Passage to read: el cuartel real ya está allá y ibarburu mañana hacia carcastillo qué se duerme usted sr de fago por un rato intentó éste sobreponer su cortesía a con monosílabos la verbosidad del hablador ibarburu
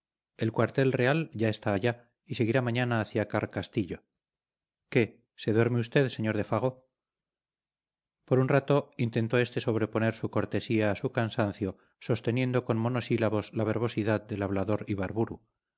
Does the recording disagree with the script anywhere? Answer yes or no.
yes